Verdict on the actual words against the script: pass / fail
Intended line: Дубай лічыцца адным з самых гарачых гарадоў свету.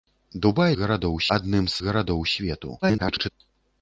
fail